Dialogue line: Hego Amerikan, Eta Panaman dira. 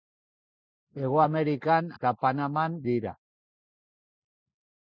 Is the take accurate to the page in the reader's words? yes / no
yes